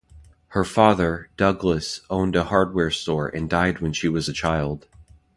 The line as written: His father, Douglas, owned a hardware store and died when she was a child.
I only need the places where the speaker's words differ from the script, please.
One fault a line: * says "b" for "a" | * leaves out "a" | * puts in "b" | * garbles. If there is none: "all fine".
* says "Her" for "His"